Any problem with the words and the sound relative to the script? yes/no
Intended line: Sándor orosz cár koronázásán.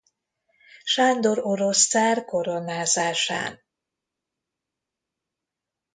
no